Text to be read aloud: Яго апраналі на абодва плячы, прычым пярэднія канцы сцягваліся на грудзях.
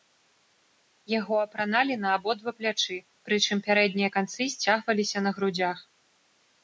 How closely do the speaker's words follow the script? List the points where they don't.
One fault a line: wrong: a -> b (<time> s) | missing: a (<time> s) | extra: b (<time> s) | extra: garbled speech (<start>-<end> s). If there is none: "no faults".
no faults